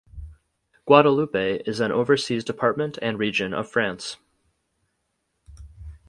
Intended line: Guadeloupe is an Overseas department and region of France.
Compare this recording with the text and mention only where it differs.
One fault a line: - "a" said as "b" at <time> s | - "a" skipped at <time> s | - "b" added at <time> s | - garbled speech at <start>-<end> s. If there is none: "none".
none